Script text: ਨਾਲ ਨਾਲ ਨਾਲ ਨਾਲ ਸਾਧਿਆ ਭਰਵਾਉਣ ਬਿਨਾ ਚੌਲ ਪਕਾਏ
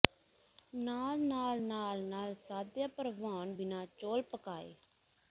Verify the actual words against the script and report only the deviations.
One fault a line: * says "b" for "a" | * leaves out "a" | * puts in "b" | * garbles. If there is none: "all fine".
all fine